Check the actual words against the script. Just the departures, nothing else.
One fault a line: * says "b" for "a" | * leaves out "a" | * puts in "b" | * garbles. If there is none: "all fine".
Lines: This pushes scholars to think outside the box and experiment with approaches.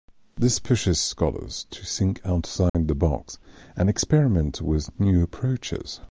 * puts in "new"